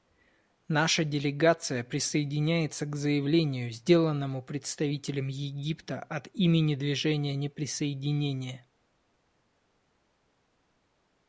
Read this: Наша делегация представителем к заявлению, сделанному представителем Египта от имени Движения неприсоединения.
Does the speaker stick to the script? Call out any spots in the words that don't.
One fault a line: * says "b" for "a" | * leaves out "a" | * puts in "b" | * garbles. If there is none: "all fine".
* says "присоединяется" for "представителем"